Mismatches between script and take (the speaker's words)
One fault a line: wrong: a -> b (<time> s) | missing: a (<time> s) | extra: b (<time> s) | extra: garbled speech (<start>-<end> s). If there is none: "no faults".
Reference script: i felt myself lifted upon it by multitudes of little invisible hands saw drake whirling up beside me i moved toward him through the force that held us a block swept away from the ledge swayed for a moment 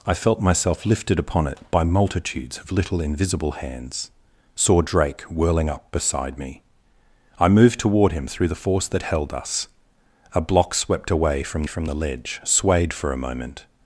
extra: from (11.7 s)